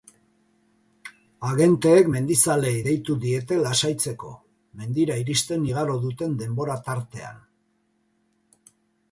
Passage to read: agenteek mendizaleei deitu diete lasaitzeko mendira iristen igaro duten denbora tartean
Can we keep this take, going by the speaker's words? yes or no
yes